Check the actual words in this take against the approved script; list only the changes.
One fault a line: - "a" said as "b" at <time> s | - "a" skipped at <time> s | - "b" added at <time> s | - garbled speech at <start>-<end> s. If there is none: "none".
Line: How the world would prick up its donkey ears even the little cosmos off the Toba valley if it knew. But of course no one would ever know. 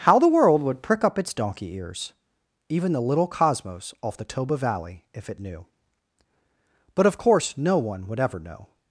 none